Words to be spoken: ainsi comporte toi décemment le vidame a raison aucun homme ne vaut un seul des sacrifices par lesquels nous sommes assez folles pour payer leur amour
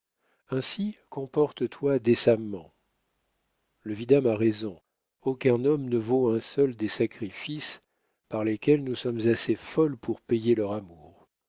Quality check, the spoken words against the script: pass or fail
pass